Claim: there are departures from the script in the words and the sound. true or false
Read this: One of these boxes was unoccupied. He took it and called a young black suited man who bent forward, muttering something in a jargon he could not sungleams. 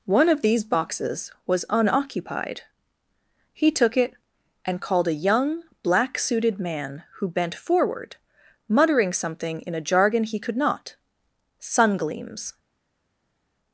false